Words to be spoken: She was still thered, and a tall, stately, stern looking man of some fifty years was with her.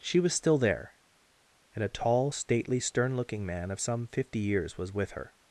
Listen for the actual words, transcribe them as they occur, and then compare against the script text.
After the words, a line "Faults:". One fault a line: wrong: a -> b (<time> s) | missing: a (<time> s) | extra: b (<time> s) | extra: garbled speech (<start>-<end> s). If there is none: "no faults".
She was still there, and a tall, stately, stern looking man of some fifty years was with her.
Faults:
wrong: thered -> there (0.6 s)